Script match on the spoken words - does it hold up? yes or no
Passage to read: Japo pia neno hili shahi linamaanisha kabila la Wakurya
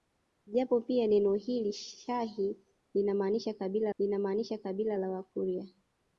no